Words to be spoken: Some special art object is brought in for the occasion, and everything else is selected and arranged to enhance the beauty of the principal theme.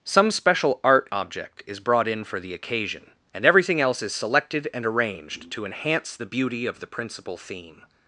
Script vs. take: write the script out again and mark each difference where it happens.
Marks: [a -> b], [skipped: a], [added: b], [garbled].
Some special art object is brought in for the occasion, and everything else is selected and arranged to enhance the beauty of the principal theme.